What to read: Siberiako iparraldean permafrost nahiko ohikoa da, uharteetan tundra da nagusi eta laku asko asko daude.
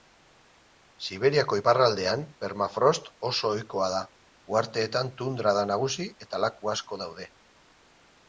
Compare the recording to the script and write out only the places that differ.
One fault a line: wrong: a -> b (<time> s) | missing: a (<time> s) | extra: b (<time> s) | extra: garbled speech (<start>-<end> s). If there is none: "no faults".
wrong: nahiko -> oso (3.3 s)
missing: asko (7.0 s)